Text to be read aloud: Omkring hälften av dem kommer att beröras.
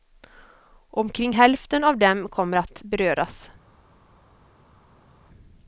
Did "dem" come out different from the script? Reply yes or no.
no